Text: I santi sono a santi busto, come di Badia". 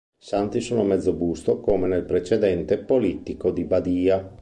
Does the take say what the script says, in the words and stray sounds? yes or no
no